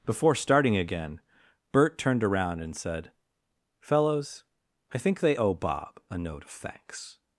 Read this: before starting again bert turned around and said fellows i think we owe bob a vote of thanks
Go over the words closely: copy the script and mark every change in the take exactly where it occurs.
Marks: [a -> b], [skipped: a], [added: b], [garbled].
before starting again bert turned around and said fellows i think [we -> they] owe bob a [vote -> note] of thanks